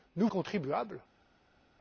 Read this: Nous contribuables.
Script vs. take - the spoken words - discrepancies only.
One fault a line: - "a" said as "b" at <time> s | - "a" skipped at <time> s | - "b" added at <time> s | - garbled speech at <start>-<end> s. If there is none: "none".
none